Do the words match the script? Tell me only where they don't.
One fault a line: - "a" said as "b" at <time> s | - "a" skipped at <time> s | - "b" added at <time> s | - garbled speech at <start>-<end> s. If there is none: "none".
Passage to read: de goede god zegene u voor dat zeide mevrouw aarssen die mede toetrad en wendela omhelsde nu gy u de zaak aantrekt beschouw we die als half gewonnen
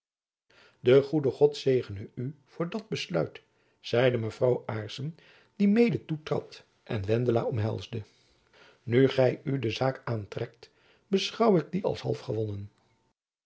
- "besluit" added at 2.9 s
- "we" said as "ik" at 11.6 s